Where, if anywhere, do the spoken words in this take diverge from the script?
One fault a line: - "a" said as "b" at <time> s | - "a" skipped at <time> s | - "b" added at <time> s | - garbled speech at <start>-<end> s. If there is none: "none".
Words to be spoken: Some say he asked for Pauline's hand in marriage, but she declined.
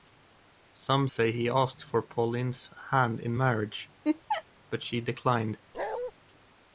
none